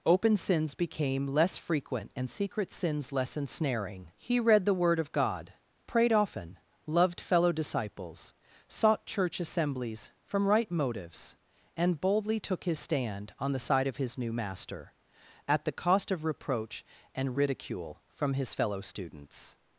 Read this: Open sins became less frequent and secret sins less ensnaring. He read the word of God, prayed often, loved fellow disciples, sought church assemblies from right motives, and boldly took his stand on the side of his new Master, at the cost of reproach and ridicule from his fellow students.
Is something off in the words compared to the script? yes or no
no